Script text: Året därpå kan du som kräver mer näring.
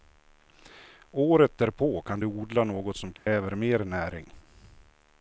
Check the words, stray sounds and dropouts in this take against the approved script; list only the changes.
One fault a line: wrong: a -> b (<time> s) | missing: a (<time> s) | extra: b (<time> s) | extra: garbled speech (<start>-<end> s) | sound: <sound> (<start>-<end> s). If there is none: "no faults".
extra: odla något (2.3 s)
sound: dropout (3.2-3.3 s)